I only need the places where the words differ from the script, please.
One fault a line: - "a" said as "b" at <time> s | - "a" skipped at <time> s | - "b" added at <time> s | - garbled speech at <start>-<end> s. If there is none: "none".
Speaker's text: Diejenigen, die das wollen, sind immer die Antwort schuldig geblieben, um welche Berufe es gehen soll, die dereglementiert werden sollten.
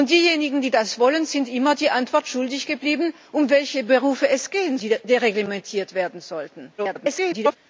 - "soll" skipped at 4.8 s
- garbled speech at 6.8-7.6 s